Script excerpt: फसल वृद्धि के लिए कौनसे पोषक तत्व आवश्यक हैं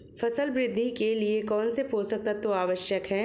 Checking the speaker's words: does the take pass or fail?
pass